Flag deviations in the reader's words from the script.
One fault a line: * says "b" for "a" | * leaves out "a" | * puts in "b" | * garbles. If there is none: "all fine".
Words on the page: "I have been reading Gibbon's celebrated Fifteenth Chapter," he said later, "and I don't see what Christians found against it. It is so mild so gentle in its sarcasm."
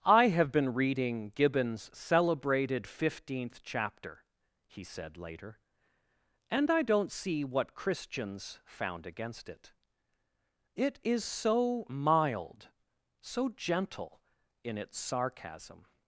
all fine